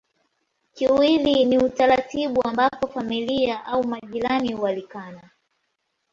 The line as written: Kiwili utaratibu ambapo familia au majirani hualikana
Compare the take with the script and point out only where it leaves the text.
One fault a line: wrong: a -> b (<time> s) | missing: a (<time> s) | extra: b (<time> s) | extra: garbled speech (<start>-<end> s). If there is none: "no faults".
extra: ni (1.4 s)